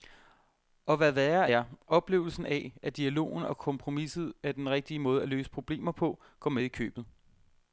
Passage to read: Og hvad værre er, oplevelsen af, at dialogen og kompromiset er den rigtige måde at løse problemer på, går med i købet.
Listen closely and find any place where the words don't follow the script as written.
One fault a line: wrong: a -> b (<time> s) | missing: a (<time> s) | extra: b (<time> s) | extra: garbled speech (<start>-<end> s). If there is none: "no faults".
no faults